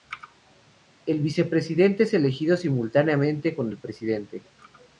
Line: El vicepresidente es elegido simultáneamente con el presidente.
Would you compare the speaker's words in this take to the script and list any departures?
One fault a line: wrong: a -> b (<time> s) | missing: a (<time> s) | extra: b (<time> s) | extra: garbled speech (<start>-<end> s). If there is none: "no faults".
no faults